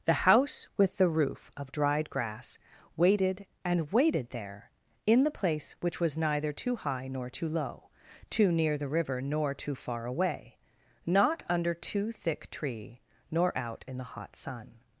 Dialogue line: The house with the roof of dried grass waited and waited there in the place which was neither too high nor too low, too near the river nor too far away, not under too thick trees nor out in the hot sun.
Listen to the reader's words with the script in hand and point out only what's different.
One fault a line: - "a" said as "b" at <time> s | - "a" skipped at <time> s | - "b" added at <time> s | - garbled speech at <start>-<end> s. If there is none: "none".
- "trees" said as "tree" at 12.5 s